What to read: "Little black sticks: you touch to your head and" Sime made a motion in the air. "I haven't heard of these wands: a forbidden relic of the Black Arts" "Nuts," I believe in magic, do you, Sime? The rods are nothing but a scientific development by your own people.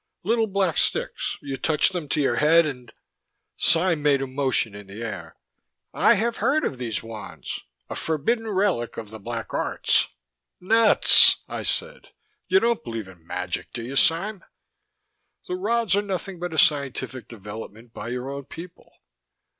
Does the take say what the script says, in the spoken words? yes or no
no